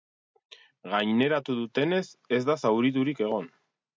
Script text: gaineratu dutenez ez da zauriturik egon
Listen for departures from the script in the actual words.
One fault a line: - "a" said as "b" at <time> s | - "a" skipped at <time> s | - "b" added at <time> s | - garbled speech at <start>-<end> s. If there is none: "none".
none